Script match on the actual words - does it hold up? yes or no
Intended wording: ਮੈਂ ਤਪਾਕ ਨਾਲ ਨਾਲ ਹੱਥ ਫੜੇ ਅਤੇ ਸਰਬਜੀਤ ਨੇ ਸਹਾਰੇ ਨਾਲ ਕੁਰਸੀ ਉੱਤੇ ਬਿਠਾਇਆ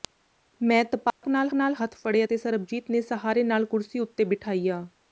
yes